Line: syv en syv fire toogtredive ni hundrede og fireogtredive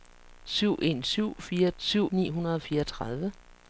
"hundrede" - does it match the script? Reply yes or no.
yes